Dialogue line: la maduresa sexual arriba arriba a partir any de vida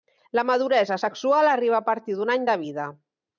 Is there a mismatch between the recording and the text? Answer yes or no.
yes